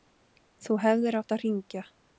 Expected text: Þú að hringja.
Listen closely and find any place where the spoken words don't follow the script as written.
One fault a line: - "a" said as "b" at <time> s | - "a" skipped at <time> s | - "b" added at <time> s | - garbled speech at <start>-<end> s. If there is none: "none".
- "hefðir átt" added at 0.8 s